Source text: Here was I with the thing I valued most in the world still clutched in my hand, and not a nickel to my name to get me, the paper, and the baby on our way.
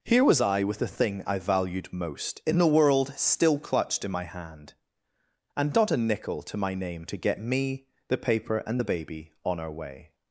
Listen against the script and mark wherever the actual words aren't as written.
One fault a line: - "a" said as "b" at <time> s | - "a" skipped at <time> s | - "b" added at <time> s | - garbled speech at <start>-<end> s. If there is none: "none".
none